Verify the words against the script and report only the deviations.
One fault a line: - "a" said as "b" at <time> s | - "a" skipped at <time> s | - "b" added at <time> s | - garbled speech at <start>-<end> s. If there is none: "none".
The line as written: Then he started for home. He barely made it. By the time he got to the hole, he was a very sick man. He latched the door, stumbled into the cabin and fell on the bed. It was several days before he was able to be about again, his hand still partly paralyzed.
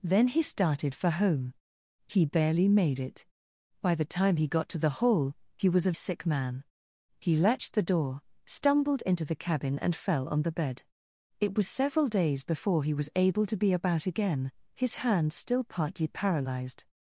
- "very" skipped at 5.9 s